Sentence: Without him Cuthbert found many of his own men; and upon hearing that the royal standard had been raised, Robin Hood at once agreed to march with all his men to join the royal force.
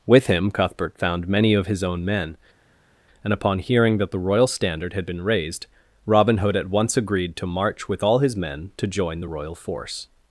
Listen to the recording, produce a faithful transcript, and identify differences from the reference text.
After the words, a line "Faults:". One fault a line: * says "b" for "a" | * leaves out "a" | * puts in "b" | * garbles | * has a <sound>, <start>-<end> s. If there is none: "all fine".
With him Cuthbert found many of his own men; and upon hearing that the royal standard had been raised, Robin Hood at once agreed to march with all his men to join the royal force.
Faults:
* says "With" for "Without"